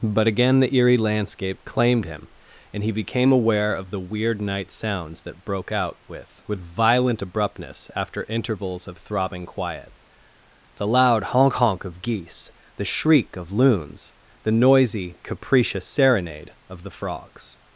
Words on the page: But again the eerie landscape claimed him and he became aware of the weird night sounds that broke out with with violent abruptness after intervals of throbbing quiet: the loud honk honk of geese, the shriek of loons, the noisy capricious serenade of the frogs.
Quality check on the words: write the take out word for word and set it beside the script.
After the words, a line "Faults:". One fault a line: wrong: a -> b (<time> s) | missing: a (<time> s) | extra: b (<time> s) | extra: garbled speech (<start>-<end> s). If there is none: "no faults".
But again the eerie landscape claimed him and he became aware of the weird night sounds that broke out with with violent abruptness after intervals of throbbing quiet: the loud honk honk of geese, the shriek of loons, the noisy capricious serenade of the frogs.
Faults:
no faults